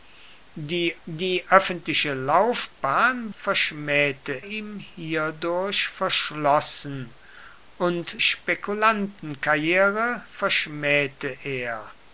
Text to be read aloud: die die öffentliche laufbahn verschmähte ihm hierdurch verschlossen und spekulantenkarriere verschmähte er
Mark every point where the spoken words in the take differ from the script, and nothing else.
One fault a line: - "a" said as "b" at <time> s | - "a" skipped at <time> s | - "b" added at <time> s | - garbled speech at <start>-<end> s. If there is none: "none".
none